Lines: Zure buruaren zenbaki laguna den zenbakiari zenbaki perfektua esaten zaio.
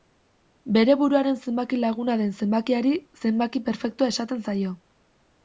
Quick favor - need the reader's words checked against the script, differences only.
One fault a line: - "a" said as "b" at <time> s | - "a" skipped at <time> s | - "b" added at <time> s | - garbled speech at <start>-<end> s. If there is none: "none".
- "Zure" said as "Bere" at 0.8 s